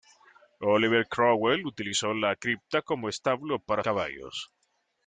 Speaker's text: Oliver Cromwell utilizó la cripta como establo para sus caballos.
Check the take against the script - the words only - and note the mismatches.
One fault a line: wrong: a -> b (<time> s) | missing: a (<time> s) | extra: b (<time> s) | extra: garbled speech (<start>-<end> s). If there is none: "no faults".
missing: sus (3.8 s)